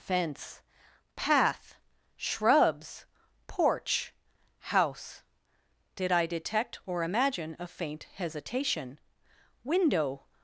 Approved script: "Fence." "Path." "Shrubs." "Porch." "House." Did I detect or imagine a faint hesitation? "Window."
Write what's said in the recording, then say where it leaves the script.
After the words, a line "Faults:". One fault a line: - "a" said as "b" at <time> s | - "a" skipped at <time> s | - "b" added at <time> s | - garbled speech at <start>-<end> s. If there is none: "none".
"Fence." "Path." "Shrubs." "Porch." "House." Did I detect or imagine a faint hesitation? "Window."
Faults:
none